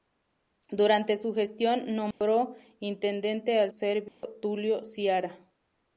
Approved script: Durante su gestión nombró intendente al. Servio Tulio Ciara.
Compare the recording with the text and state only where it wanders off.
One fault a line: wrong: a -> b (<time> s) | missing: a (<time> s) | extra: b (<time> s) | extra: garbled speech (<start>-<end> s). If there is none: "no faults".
no faults